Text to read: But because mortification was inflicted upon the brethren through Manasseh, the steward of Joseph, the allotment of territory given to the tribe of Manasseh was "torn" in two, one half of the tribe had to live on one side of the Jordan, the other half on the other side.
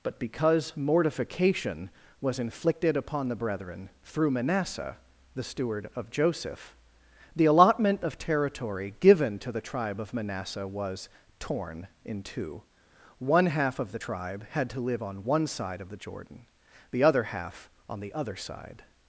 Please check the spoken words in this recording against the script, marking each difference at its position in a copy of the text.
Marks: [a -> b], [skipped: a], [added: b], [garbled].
But because mortification was inflicted upon the brethren through Manasseh, the steward of Joseph, the allotment of territory given to the tribe of Manasseh was "torn" in two, one half of the tribe had to live on one side of the Jordan, the other half on the other side.